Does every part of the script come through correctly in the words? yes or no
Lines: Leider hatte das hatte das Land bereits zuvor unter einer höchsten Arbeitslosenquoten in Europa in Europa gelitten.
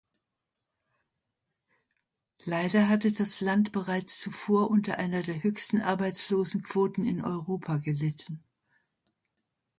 no